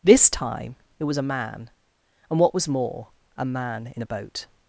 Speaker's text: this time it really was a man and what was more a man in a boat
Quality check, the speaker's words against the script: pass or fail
fail